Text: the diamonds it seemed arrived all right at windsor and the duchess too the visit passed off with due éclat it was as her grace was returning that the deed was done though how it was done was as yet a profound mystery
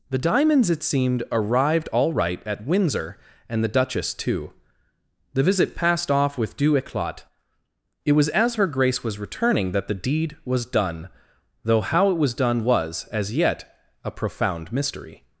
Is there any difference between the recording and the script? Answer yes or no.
no